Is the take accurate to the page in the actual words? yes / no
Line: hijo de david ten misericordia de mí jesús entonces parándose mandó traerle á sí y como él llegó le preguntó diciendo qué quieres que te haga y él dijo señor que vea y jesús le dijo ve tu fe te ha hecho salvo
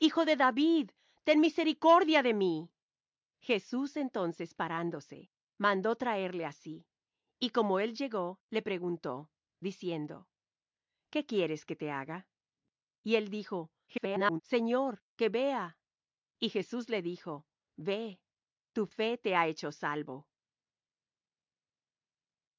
no